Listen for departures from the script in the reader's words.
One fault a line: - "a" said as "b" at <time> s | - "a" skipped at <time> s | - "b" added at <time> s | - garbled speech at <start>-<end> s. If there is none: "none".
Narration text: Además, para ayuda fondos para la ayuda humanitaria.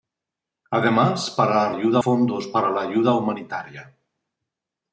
none